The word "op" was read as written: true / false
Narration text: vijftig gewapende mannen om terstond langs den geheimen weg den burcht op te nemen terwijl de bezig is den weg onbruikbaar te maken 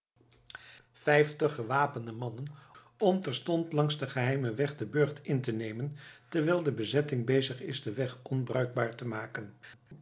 false